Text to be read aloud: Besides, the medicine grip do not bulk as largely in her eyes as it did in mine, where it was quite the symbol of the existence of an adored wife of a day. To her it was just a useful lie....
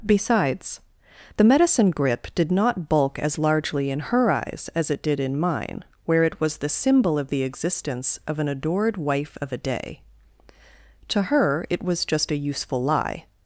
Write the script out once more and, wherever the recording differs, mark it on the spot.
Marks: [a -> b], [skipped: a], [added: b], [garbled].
Besides, the medicine grip [do -> did] not bulk as largely in her eyes as it did in mine, where it was [skipped: quite] the symbol of the existence of an adored wife of a day. To her it was just a useful lie....